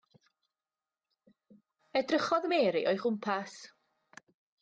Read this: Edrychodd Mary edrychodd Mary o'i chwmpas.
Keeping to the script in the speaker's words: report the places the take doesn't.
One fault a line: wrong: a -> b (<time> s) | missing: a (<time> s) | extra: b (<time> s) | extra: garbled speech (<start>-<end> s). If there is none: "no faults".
missing: edrychodd Mary (2.8 s)